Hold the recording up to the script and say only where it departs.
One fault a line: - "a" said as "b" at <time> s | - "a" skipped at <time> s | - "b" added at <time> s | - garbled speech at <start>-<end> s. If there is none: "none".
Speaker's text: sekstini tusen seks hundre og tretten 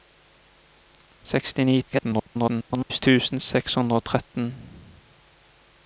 - garbled speech at 1.9-3.0 s